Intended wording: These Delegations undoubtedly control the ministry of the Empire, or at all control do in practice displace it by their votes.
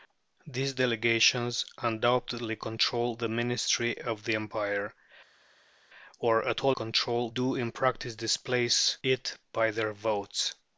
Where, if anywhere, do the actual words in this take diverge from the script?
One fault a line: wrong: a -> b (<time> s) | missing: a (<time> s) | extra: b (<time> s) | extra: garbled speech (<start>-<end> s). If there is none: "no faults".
no faults